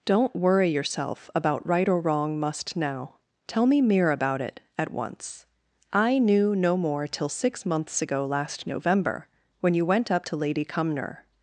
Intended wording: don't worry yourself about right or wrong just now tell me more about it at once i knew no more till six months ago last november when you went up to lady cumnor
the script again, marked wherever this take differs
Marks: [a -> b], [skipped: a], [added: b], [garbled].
don't worry yourself about right or wrong [just -> must] now tell me [more -> mere] about it at once i knew no more till six months ago last november when you went up to lady cumnor